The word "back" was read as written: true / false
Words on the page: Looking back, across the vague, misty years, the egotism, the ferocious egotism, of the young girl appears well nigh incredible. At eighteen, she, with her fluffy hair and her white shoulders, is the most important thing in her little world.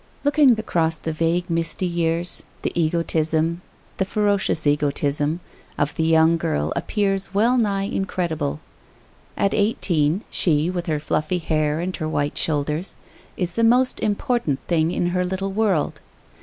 false